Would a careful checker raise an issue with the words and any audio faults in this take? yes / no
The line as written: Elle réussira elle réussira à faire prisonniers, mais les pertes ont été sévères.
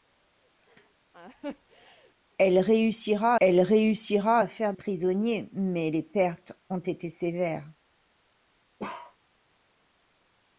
yes